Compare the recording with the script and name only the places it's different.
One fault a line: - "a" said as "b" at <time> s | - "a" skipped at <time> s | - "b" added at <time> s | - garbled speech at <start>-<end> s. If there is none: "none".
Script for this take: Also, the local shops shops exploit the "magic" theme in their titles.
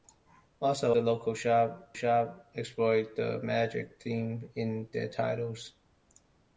none